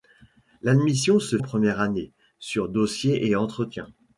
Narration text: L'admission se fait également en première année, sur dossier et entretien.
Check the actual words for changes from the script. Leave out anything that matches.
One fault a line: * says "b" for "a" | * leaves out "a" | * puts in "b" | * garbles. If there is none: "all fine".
* leaves out "fait également"